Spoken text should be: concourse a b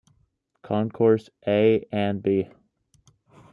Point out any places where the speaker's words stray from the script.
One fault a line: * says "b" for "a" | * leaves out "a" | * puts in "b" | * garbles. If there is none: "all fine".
* puts in "and"